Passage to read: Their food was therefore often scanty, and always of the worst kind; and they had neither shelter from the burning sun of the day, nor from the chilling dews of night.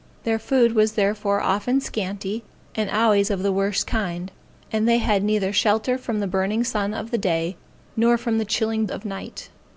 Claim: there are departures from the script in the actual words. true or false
true